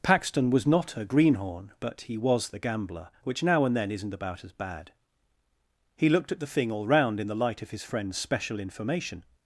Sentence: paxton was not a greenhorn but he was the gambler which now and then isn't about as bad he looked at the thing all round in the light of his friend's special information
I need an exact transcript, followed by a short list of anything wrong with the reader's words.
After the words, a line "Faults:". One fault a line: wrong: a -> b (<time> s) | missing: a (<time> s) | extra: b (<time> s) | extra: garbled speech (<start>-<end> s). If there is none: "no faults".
paxton was not a greenhorn but he was the gambler which now and then isn't about as bad he looked at the thing all round in the light of his friend's special information
Faults:
no faults